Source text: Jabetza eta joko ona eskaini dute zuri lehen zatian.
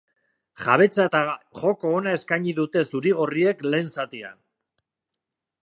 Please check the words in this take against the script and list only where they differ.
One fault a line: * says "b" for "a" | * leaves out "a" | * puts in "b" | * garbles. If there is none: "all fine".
* puts in "gorriek"